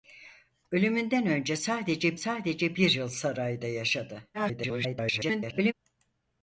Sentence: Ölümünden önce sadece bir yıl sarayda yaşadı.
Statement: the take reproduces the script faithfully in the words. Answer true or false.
false